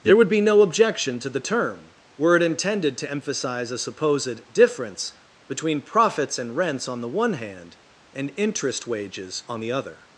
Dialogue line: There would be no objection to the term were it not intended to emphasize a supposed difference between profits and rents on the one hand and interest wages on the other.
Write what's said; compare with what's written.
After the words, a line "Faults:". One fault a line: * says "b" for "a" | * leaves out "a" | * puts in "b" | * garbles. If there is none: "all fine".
There would be no objection to the term were it intended to emphasize a supposed difference between profits and rents on the one hand and interest wages on the other.
Faults:
* leaves out "not"